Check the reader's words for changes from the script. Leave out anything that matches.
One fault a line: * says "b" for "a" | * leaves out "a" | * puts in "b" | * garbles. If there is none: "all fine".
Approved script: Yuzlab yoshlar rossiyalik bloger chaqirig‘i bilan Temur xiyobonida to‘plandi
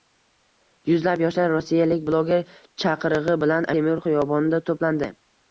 all fine